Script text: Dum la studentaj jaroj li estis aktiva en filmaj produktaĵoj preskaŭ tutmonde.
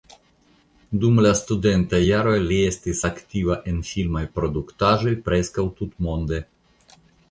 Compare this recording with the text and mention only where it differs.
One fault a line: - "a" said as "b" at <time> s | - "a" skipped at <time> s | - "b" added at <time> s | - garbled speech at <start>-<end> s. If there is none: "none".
none